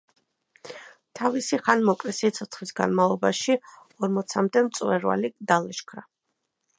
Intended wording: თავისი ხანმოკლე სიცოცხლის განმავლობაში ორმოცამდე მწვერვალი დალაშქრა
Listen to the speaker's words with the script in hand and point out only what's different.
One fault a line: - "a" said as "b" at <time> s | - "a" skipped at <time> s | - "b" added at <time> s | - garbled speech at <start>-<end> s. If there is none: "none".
none